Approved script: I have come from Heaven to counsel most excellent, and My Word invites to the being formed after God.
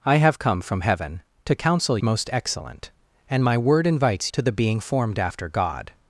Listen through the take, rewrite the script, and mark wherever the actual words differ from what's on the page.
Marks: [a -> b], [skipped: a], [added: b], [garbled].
I have come from Heaven to counsel most excellent, and My Word invites to the being formed after God.